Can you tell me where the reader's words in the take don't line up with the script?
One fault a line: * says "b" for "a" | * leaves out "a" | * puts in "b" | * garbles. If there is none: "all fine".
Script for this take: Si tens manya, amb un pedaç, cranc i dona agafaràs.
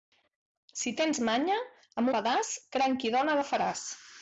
* leaves out "un"